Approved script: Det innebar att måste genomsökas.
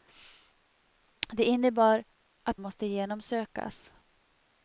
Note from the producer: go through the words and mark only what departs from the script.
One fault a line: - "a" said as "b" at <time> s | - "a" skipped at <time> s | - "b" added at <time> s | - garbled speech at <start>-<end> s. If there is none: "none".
none